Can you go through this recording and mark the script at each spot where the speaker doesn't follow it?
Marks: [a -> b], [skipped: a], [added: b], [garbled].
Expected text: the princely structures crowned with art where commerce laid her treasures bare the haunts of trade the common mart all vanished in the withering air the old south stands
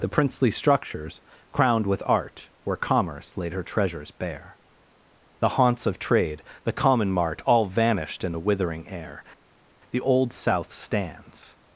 the princely structures crowned with art where commerce laid her treasures bare the haunts of trade the common mart all vanished in the withering air the old south stands